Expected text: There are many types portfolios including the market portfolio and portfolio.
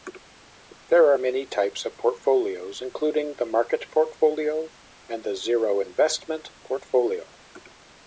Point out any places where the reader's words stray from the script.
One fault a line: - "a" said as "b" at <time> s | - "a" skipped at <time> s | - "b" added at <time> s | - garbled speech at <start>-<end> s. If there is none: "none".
- "of" added at 1.8 s
- "the zero investment" added at 5.2 s